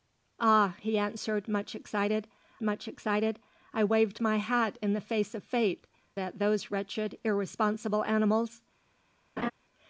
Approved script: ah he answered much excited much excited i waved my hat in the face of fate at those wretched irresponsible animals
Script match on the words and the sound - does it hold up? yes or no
no